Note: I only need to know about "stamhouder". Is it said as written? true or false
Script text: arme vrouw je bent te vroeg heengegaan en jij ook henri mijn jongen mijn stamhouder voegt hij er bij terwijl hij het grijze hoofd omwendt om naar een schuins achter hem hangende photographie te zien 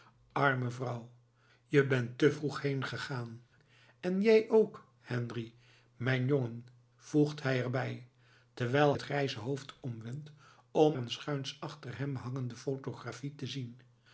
false